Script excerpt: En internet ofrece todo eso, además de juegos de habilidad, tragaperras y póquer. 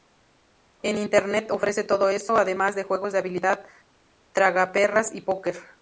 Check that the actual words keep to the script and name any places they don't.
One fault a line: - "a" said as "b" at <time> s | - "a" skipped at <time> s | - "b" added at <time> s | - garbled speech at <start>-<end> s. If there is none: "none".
none